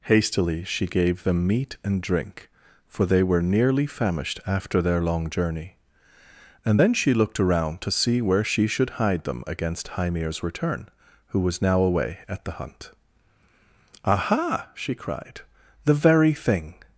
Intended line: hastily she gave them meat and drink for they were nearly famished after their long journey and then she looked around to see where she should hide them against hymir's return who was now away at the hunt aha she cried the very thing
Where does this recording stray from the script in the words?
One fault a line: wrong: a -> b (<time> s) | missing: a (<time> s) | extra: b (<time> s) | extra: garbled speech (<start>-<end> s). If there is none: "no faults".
no faults